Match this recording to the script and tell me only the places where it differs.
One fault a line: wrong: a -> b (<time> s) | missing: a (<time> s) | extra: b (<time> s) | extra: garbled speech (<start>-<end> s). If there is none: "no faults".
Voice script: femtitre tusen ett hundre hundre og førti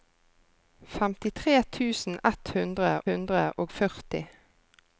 no faults